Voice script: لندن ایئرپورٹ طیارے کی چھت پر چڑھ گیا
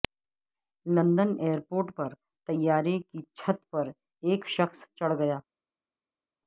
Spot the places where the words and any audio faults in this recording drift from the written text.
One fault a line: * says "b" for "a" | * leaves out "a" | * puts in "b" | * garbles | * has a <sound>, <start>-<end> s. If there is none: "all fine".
* puts in "پر"
* puts in "ایک شخص"